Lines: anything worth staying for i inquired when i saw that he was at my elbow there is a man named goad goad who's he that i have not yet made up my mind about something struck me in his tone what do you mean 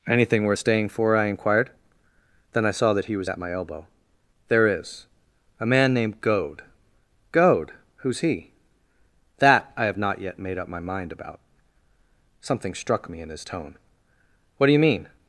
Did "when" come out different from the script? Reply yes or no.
yes